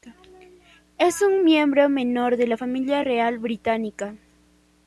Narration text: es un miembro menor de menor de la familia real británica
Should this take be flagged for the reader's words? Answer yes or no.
yes